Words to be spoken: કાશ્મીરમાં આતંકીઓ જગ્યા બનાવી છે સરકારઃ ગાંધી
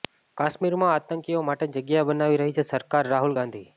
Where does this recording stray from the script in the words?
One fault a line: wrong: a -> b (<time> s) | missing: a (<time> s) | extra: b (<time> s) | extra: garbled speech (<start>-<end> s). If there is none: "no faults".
extra: માટે (1.4 s)
extra: રહી (2.4 s)
extra: રાહુલ (3.1 s)